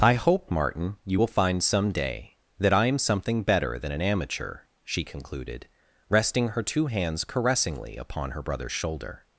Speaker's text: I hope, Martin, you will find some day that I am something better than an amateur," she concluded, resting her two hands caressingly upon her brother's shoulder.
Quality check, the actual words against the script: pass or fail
pass